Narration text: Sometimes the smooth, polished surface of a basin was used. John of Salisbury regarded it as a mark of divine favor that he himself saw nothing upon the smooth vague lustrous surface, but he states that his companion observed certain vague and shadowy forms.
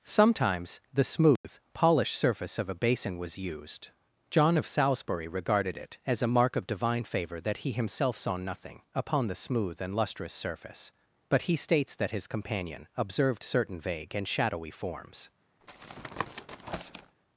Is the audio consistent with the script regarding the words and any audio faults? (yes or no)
no